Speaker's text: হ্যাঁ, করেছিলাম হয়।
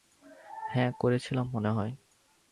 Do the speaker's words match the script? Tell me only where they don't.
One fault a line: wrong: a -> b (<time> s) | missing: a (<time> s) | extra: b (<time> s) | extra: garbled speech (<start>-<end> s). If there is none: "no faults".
extra: মনে (1.5 s)